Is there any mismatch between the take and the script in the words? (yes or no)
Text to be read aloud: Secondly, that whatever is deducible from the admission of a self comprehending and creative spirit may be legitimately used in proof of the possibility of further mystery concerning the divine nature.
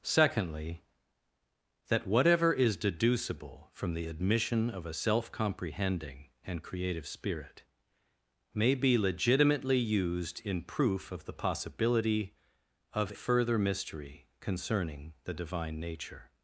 no